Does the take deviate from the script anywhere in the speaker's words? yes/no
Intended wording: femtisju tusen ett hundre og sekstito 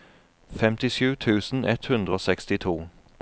no